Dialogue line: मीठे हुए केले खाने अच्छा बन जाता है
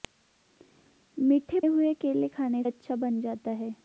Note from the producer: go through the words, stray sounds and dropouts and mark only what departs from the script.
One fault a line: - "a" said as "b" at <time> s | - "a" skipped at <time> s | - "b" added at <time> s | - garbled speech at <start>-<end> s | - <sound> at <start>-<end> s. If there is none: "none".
none